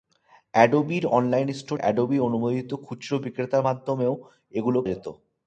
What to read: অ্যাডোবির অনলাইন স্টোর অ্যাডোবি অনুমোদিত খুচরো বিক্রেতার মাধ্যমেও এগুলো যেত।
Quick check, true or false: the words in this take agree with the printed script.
true